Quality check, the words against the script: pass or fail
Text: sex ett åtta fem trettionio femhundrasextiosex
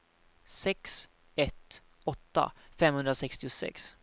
fail